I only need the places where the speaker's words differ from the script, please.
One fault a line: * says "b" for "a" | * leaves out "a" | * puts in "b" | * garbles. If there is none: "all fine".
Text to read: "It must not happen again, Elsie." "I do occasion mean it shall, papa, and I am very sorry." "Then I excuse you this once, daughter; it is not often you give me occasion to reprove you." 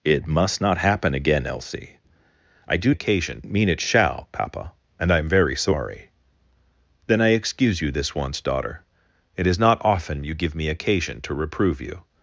all fine